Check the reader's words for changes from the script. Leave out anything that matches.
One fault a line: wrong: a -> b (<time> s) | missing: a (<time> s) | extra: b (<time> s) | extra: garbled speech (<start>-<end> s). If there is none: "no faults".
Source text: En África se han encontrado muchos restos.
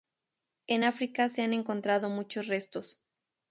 no faults